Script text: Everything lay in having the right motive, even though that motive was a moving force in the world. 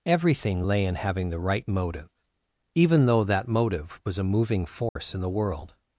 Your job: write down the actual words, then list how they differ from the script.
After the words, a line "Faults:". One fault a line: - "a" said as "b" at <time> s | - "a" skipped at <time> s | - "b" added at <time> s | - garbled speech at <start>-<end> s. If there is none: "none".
Everything lay in having the right motive, even though that motive was a moving force in the world.
Faults:
none